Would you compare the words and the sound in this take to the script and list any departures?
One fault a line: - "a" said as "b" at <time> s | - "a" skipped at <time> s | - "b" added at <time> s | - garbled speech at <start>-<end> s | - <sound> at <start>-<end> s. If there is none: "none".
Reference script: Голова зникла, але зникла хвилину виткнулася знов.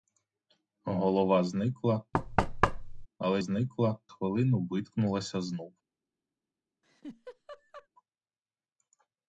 - thud at 2.1-3.1 s
- laugh at 6.8-7.9 s